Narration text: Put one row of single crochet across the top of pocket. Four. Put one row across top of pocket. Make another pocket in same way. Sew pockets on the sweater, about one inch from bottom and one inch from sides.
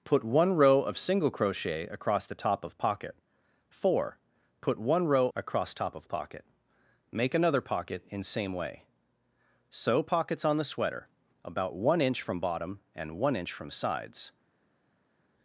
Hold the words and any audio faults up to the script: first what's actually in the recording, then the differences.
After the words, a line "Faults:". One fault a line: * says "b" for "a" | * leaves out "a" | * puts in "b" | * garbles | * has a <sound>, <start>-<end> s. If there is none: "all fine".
Put one row of single crochet across the top of pocket. Four. Put one row across top of pocket. Make another pocket in same way. Sew pockets on the sweater, about one inch from bottom and one inch from sides.
Faults:
all fine